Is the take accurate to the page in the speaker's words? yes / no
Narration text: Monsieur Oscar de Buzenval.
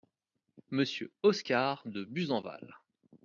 yes